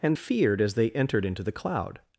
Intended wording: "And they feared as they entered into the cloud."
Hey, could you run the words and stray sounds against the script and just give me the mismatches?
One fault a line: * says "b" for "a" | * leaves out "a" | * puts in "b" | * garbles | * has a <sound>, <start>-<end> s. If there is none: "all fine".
* leaves out "they"